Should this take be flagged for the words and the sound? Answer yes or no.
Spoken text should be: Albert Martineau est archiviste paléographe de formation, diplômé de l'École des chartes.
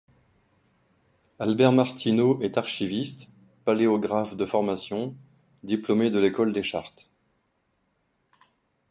no